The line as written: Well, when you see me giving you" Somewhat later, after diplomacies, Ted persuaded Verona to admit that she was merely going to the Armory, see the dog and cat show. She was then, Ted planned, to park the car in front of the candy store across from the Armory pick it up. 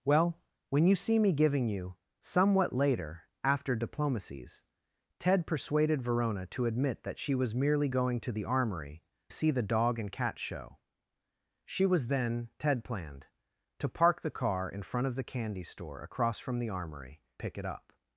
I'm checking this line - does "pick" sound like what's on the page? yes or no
yes